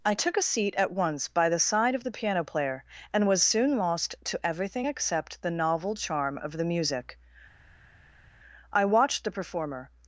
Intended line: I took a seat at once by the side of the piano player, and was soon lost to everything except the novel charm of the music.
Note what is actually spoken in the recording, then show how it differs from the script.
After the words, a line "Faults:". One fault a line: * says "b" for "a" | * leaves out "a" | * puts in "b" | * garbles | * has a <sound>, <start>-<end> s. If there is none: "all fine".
I took a seat at once by the side of the piano player, and was soon lost to everything except the novel charm of the music. I watched the performer
Faults:
* puts in "I watched the performer"